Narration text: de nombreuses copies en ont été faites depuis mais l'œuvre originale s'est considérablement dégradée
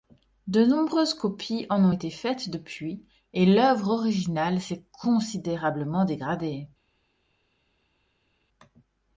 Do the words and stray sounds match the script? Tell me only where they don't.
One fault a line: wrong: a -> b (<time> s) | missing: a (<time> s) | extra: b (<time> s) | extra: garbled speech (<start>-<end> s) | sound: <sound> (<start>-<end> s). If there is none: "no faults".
wrong: mais -> et (3.3 s)